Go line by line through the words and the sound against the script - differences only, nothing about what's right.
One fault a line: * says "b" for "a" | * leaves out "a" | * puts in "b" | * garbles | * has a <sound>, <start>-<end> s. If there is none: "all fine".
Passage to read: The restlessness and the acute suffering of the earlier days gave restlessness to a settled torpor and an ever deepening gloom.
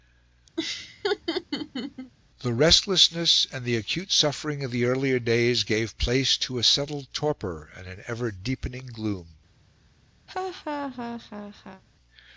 * has a laugh, 0.6-2.1 s
* says "place" for "restlessness"
* has a laugh, 10.3-11.8 s